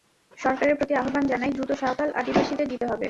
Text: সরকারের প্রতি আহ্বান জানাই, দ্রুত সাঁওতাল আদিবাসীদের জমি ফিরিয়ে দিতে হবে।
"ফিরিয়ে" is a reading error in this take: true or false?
true